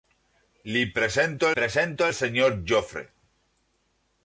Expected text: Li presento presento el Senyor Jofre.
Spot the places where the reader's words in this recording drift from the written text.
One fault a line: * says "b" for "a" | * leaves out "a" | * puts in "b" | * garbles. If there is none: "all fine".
all fine